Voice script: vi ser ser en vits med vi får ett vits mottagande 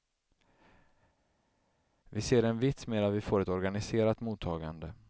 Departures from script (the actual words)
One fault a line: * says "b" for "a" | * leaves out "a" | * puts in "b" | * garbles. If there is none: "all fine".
* leaves out "ser"
* puts in "att"
* says "organiserat" for "vits"